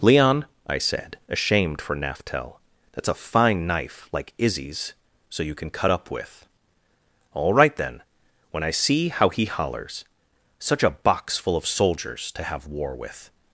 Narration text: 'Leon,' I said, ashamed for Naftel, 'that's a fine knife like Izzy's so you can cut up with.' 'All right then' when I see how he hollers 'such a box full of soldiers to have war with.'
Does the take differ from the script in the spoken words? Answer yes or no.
no